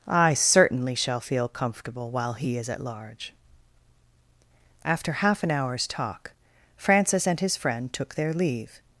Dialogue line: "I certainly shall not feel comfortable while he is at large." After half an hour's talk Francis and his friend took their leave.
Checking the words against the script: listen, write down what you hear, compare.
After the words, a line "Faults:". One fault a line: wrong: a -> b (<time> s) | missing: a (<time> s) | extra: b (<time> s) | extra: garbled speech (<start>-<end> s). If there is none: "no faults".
"I certainly shall feel comfortable while he is at large." After half an hour's talk Francis and his friend took their leave.
Faults:
missing: not (1.2 s)